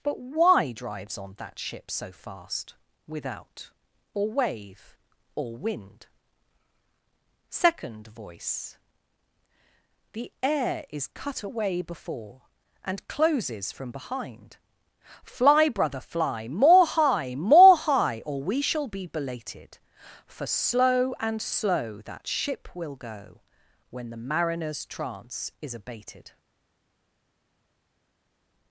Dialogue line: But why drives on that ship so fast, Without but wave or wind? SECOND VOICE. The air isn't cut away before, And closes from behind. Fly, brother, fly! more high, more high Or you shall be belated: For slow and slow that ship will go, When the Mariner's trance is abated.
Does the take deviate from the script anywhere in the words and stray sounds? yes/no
yes